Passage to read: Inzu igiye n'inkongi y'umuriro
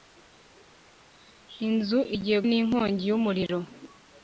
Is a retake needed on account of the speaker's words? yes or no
no